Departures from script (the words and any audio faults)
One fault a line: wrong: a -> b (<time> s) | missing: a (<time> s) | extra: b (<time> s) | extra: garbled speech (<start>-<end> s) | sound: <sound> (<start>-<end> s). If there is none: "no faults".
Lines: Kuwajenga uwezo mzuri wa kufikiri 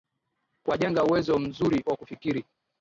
no faults